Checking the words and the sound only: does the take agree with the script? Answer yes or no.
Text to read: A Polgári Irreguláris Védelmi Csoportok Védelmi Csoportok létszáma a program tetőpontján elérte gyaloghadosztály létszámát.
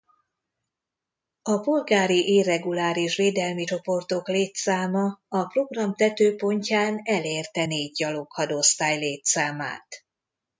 no